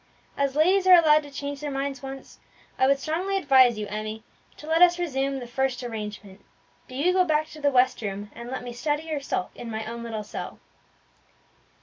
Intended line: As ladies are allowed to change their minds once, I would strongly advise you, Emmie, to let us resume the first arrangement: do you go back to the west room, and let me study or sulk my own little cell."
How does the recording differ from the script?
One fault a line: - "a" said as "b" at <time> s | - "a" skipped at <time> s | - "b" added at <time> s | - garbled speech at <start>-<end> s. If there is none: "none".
- "in" added at 9.5 s